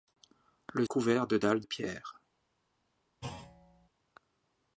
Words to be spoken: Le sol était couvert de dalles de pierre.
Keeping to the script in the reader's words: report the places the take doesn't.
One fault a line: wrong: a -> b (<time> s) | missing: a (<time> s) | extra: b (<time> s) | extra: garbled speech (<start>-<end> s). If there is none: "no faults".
missing: sol était (0.9 s)
missing: de (1.6 s)